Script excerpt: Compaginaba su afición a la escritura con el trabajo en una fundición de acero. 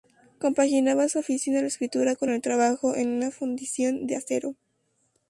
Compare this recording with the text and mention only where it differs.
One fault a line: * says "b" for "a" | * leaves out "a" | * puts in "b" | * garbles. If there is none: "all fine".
all fine